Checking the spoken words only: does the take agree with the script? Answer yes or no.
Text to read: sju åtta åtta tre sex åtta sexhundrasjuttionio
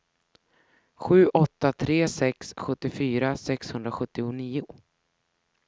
no